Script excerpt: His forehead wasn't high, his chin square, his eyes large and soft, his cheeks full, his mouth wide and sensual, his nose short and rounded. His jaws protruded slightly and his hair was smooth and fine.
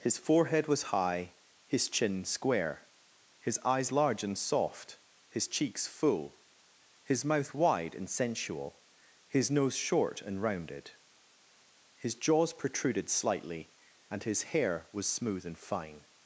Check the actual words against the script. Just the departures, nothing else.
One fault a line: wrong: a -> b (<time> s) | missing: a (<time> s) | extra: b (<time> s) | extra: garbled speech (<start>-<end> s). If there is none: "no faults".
wrong: wasn't -> was (0.7 s)